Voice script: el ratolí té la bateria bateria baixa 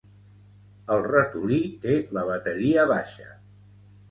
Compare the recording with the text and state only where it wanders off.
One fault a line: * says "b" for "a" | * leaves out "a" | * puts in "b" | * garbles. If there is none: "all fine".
* leaves out "bateria"